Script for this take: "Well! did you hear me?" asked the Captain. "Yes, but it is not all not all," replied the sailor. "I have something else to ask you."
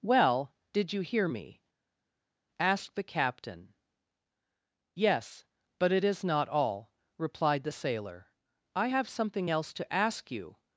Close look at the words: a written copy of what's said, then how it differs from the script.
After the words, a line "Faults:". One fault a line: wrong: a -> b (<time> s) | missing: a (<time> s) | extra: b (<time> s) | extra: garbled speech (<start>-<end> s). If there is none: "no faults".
"Well! did you hear me?" asked the Captain. "Yes, but it is not all," replied the sailor. "I have something else to ask you."
Faults:
missing: not all (6.9 s)